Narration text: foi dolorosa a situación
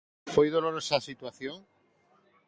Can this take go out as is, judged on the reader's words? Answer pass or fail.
pass